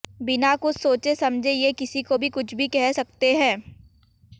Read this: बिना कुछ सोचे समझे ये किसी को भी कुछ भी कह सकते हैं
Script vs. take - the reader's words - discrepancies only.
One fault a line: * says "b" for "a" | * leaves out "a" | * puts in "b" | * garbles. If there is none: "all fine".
all fine